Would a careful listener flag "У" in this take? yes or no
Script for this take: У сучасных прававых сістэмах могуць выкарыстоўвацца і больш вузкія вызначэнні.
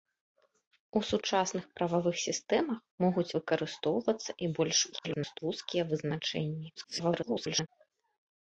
no